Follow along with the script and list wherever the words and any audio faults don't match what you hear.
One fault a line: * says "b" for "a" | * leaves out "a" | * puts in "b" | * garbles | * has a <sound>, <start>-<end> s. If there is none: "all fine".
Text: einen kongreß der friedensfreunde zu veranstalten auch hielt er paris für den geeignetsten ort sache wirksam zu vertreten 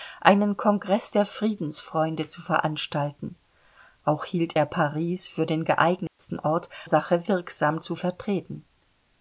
* has a dropout, 6.1-6.2 s